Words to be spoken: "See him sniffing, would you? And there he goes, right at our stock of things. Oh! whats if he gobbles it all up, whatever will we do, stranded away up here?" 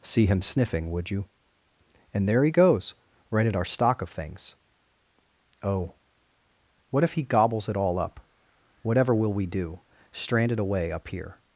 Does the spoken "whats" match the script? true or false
false